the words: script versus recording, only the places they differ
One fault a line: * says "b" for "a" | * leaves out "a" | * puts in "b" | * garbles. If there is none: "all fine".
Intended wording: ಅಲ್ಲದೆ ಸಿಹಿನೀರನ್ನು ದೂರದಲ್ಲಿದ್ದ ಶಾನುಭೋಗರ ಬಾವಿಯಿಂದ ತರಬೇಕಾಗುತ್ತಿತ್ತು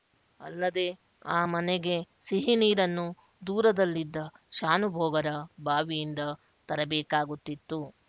* puts in "ಆ ಮನೆಗೆ"